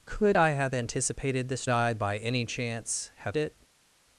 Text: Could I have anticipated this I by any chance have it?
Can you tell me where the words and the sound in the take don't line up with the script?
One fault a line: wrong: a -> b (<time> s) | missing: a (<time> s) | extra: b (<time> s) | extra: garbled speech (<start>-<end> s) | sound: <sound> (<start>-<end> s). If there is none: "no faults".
no faults